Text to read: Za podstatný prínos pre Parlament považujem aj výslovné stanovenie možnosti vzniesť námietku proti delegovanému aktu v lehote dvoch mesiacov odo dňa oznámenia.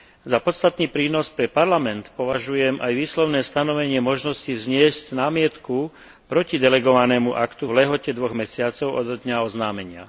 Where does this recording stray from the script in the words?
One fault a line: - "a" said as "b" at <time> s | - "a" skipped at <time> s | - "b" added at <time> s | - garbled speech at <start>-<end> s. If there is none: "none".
none